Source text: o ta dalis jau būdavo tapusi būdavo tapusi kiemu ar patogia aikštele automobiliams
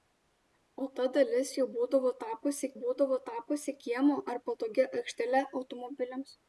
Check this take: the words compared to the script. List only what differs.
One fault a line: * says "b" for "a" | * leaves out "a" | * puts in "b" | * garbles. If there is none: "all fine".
all fine